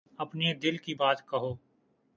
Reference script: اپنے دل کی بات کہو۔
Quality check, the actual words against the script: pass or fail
pass